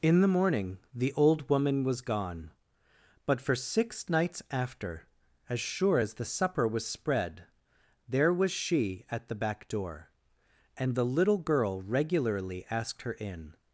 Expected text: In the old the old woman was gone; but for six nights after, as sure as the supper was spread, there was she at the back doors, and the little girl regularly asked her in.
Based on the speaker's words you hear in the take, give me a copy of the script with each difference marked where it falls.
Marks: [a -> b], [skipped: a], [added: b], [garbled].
In the [old -> morning] the old woman was gone; but for six nights after, as sure as the supper was spread, there was she at the back [doors, -> door] and the little girl regularly asked her in.